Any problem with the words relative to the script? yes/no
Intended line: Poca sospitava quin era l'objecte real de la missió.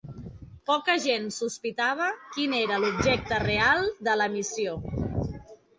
yes